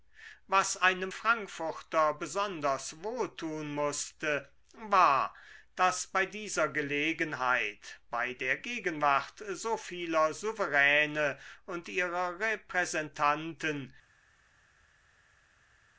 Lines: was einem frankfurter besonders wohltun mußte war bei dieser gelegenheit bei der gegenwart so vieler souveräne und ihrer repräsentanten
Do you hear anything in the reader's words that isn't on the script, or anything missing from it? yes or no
yes